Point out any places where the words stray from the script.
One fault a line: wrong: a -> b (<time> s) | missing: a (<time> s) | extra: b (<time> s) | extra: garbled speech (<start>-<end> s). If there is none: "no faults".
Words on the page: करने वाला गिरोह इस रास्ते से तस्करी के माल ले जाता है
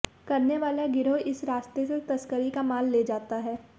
wrong: के -> का (2.5 s)